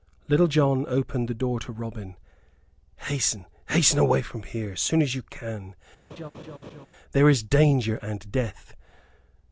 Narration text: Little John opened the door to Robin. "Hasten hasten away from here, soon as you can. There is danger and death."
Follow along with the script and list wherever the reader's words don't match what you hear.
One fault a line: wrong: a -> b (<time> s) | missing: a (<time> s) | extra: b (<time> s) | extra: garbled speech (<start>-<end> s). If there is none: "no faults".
no faults